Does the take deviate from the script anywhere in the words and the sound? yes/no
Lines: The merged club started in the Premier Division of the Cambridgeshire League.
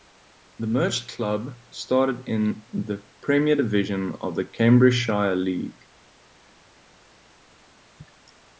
no